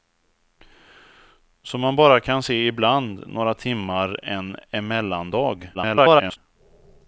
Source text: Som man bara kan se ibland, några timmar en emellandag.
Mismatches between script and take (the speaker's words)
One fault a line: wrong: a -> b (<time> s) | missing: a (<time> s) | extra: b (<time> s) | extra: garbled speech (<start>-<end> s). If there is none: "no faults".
extra: garbled speech (5.7-6.4 s)